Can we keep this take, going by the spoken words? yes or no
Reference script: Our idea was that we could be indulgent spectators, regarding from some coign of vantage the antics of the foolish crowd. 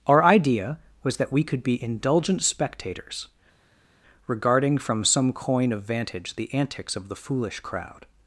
yes